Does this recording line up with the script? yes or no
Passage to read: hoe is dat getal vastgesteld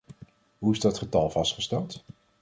yes